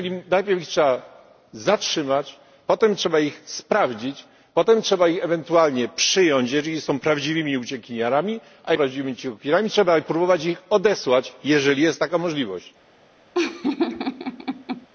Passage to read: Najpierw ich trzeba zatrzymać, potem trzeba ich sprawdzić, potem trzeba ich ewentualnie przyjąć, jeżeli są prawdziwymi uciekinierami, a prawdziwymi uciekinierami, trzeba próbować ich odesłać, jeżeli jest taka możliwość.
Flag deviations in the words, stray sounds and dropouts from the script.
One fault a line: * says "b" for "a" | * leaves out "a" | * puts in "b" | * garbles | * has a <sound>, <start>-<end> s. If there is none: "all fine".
* has a laugh, 13.3-14.9 s